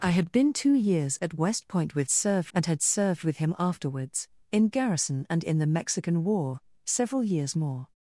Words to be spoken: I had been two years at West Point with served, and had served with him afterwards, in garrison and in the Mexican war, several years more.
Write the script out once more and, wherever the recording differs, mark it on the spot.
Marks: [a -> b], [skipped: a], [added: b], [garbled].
I had been two years at West Point with served, and had served with him afterwards, in garrison and in the Mexican war, several years more.